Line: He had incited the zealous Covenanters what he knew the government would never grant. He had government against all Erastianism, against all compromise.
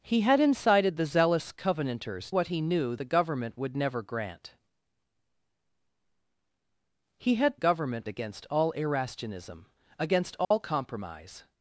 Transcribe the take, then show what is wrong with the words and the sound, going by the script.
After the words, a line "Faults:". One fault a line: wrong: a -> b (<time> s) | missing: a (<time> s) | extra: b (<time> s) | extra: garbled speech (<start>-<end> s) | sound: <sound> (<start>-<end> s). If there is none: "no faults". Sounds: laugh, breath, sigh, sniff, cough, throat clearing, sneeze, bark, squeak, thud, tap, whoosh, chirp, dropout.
He had incited the zealous Covenanters what he knew the government would never grant. He had government against all Erastianism, against all compromise.
Faults:
sound: dropout (10.4-10.5 s)